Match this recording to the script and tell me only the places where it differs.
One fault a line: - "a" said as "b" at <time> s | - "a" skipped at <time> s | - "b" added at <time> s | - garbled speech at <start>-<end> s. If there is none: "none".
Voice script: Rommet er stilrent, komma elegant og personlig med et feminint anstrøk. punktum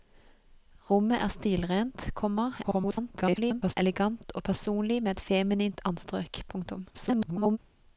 - garbled speech at 2.6-3.7 s
- garbled speech at 6.9-7.6 s